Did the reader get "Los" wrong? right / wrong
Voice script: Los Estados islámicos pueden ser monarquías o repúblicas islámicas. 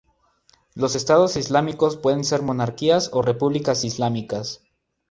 right